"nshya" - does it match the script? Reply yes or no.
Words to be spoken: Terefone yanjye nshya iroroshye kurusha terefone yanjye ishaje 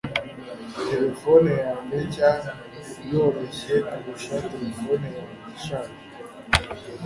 yes